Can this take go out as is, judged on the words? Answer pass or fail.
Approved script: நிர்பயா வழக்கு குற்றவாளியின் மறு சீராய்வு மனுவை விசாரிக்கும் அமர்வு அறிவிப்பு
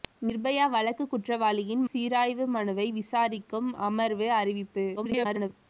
fail